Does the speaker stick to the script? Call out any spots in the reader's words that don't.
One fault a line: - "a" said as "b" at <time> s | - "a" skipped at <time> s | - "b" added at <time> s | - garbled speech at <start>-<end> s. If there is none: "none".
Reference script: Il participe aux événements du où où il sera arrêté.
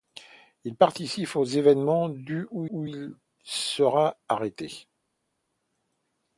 none